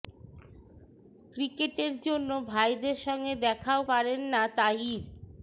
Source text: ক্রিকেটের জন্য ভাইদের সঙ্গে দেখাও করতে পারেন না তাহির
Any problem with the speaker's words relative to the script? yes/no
yes